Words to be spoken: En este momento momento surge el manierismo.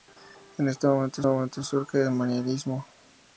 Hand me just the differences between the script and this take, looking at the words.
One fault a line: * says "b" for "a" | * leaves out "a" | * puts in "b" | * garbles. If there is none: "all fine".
all fine